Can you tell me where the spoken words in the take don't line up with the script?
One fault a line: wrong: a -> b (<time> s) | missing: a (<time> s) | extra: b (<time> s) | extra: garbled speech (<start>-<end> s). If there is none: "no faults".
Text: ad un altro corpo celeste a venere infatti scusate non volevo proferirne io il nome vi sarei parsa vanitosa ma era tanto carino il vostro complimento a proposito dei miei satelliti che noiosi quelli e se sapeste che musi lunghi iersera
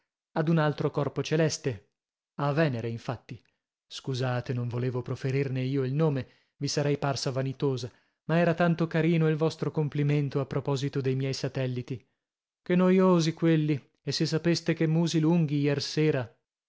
no faults